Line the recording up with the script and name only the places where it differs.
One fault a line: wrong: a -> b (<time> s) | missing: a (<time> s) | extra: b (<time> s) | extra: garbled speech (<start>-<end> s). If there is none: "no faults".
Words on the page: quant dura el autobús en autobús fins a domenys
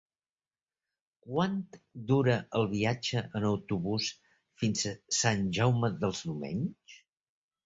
wrong: autobús -> viatge (2.7 s)
extra: sant jaume dels (5.2 s)